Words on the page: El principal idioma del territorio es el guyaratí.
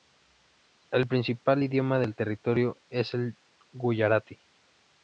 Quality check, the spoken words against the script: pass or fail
pass